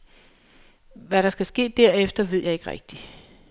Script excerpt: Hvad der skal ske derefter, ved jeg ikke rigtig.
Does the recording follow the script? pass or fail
pass